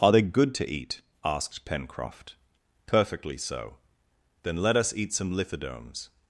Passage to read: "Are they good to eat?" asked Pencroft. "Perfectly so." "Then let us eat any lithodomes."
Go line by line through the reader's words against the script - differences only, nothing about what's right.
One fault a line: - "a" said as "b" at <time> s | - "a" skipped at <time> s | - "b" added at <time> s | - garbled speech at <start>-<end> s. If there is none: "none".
- "any" said as "some" at 5.1 s